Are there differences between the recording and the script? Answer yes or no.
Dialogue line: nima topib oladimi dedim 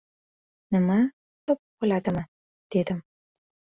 no